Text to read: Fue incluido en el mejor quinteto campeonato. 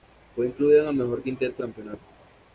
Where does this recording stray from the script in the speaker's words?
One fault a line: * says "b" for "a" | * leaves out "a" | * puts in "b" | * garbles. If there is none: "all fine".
all fine